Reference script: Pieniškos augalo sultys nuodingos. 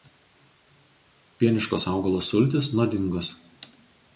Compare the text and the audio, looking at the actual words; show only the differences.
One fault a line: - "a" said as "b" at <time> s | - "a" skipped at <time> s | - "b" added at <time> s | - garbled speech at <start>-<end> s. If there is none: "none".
none